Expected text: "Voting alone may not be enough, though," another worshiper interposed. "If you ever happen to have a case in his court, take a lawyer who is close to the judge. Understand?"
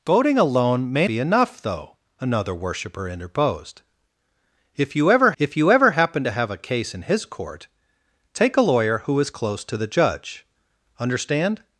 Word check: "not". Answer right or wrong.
wrong